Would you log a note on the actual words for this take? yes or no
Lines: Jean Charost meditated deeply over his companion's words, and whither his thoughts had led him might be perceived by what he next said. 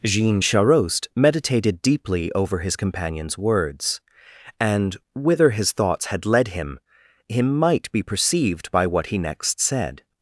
yes